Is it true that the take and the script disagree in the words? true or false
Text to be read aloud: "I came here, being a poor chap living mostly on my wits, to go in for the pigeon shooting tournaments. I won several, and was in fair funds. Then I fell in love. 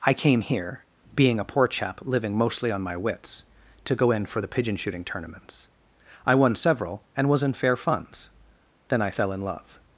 false